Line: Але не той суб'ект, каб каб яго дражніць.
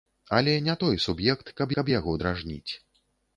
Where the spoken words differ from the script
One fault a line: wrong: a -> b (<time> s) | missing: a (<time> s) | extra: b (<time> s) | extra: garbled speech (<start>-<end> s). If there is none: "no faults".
no faults